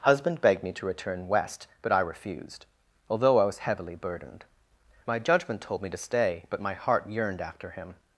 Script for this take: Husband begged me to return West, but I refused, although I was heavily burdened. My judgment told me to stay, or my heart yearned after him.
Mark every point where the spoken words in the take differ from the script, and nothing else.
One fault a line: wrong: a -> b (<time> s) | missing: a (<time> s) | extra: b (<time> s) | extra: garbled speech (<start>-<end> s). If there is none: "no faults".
wrong: or -> but (6.5 s)